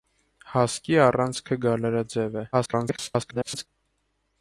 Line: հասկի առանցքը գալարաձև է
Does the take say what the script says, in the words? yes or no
no